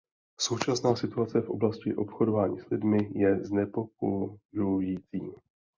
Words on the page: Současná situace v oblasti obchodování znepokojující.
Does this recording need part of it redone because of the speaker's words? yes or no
yes